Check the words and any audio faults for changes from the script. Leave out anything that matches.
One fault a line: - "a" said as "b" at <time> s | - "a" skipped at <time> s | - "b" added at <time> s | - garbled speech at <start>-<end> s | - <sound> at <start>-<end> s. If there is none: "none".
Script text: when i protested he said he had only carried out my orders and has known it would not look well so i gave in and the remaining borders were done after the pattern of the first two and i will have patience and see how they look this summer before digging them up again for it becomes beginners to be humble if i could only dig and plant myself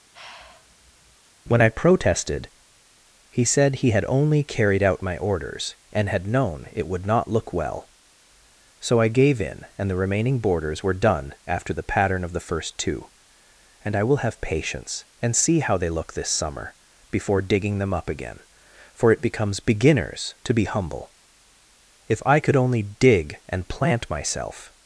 - sigh at 0.1-1.2 s
- "has" said as "had" at 6.1 s